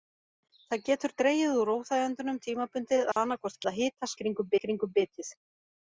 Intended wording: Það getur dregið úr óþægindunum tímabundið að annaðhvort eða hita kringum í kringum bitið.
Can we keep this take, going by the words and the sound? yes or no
no